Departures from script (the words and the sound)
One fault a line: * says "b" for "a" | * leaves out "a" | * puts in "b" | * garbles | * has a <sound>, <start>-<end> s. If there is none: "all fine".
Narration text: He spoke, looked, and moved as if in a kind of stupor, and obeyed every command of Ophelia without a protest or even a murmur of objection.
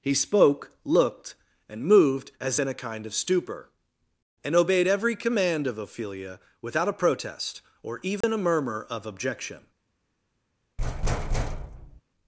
* leaves out "if"
* has a dropout, 8.2-8.2 s
* has a thud, 10.8-12.0 s